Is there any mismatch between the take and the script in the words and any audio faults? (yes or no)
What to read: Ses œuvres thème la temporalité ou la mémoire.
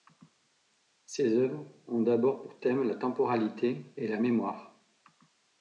yes